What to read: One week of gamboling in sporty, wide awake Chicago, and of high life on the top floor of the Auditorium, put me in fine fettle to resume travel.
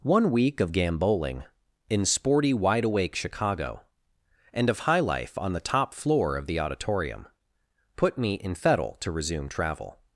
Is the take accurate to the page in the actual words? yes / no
no